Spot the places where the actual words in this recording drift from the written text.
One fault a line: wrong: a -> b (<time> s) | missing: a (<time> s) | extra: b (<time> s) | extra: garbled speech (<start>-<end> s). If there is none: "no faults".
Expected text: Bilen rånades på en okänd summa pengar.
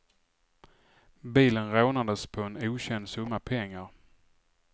no faults